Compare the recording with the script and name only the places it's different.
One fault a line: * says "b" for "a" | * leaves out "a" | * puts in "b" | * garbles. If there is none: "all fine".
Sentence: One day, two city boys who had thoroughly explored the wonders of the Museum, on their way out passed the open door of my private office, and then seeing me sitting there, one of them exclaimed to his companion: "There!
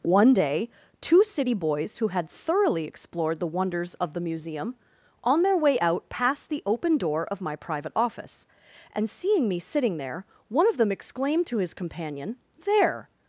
* leaves out "then"